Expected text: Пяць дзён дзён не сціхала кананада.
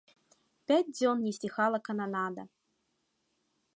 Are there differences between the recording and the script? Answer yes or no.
yes